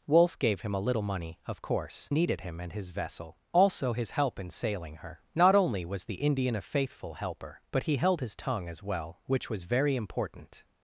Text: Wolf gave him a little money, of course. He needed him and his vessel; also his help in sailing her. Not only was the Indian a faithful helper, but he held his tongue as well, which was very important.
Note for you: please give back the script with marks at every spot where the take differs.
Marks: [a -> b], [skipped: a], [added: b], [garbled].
Wolf gave him a little money, of course. [skipped: He] needed him and his vessel; also his help in sailing her. Not only was the Indian a faithful helper, but he held his tongue as well, which was very important.